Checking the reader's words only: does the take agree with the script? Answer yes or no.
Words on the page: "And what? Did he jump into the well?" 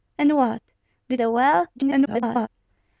no